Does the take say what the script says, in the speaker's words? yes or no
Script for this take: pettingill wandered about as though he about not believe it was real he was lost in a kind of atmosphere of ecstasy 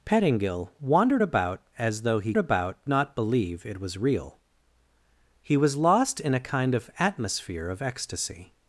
yes